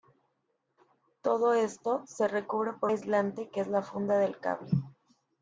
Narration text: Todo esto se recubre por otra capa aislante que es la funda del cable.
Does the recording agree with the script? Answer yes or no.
no